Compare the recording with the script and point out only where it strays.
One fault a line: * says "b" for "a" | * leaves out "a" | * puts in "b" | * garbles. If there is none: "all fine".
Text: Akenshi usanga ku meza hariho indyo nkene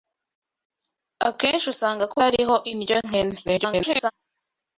* leaves out "meza"
* garbles